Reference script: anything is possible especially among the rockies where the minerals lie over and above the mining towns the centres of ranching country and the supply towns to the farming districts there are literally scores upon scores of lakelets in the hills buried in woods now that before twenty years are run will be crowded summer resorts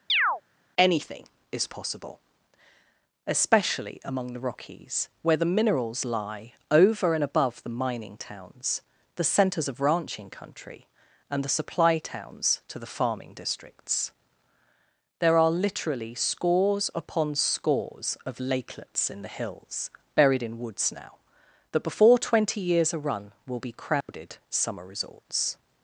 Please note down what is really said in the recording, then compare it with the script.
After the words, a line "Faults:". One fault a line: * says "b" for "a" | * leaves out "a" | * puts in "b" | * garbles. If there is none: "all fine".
anything is possible especially among the rockies where the minerals lie over and above the mining towns the centres of ranching country and the supply towns to the farming districts there are literally scores upon scores of lakelets in the hills buried in woods now that before twenty years are run will be crowded summer resorts
Faults:
all fine